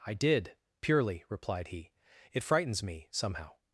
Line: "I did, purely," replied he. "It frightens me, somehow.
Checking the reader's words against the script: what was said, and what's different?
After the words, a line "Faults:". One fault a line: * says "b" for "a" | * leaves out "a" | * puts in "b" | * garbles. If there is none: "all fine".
"I did, purely," replied he. "It frightens me, somehow.
Faults:
all fine